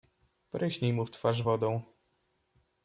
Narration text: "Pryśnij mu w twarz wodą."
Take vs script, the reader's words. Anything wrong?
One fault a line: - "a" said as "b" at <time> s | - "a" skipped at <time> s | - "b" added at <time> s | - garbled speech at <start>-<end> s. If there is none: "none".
none